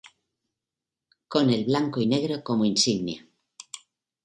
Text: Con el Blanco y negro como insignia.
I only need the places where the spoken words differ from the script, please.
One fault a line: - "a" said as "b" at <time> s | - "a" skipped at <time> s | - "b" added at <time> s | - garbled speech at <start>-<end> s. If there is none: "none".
none